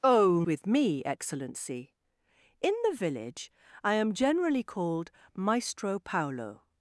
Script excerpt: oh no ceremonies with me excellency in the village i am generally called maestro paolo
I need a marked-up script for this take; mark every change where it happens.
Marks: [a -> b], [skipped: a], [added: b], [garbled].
oh [skipped: no ceremonies] with me excellency in the village i am generally called maestro paolo